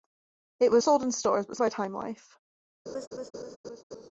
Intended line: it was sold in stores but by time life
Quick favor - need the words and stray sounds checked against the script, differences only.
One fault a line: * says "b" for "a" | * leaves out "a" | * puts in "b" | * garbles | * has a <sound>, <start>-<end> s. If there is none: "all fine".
* has a laugh, 2.9-4.1 s